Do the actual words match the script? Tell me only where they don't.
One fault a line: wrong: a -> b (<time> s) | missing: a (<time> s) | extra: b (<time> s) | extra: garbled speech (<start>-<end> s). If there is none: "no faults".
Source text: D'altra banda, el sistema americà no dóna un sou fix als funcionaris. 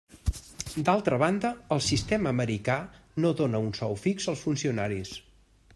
no faults